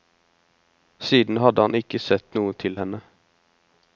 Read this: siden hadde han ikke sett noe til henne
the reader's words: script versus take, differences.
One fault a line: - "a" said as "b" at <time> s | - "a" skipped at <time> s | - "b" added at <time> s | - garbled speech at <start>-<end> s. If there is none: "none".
none